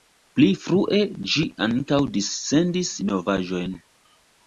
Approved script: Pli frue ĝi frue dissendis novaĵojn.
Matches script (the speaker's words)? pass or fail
fail